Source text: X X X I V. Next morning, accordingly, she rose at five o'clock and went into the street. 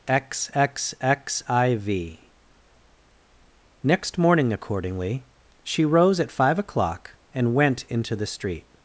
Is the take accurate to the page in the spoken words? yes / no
yes